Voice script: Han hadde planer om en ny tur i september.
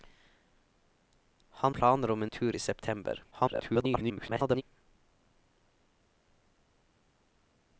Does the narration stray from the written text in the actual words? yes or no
yes